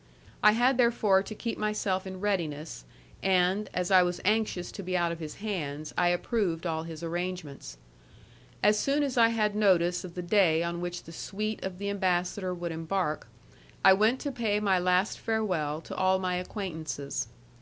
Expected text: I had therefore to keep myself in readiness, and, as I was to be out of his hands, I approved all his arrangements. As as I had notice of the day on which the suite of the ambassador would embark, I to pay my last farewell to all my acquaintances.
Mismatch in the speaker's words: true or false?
true